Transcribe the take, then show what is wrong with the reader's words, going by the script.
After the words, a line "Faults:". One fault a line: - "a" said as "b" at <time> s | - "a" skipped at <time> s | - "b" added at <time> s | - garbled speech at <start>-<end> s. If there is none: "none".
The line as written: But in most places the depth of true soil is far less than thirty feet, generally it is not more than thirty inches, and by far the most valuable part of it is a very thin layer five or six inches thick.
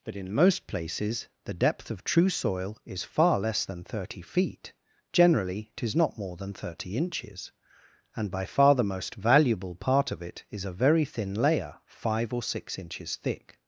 But in most places the depth of true soil is far less than thirty feet, generally it is not more than thirty inches, and by far the most valuable part of it is a very thin layer five or six inches thick.
Faults:
none